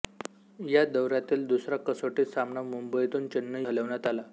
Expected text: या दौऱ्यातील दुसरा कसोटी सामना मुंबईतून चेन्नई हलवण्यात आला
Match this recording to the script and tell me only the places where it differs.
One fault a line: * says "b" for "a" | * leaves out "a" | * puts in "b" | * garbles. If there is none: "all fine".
all fine